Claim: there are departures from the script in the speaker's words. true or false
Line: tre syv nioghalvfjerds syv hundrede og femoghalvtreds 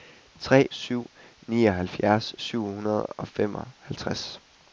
false